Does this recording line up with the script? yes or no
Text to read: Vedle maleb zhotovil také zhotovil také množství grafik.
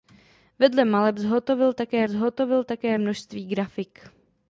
yes